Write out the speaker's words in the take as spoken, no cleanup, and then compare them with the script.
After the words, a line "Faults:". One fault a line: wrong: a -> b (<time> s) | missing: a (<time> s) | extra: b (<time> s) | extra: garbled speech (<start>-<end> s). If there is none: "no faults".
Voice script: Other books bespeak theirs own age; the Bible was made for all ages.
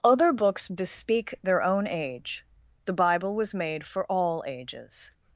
Other books bespeak their own age; the Bible was made for all ages.
Faults:
wrong: theirs -> their (1.4 s)